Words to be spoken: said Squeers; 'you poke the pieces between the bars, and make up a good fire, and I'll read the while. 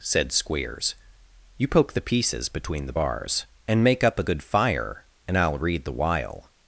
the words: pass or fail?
pass